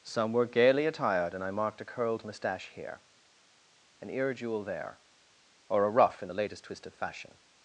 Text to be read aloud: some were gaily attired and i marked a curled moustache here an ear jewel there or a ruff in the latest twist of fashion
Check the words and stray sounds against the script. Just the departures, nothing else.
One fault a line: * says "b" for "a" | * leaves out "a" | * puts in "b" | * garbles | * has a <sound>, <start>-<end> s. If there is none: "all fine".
all fine